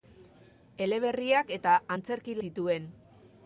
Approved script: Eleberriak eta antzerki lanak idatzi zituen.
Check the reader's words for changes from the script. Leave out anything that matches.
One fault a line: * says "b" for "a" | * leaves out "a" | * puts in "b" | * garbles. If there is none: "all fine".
* leaves out "lanak idatzi"